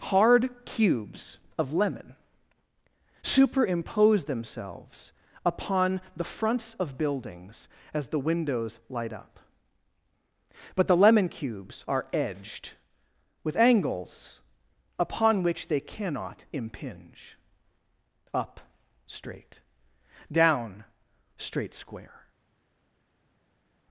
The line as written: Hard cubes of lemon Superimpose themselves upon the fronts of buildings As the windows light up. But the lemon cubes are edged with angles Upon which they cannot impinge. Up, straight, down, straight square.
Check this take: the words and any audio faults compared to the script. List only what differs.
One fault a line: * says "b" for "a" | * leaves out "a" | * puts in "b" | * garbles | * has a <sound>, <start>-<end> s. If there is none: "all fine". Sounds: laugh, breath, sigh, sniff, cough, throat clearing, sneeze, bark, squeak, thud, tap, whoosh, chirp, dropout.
all fine